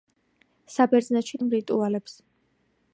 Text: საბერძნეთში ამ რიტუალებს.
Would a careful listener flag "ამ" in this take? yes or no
no